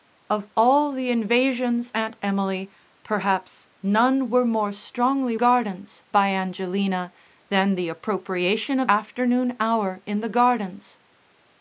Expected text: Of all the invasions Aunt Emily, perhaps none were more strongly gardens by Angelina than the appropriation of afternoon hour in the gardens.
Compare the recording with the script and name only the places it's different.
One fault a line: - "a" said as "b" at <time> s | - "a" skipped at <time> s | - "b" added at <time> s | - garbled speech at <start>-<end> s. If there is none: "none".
none